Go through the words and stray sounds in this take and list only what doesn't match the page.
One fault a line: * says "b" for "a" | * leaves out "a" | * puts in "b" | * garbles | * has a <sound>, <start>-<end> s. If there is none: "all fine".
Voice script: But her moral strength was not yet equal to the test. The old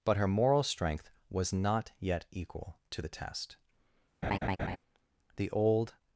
* has a laugh, 4.2-4.8 s